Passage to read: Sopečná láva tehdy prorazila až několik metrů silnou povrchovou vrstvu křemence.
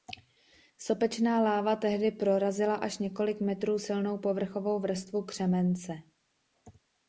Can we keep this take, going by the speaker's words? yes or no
yes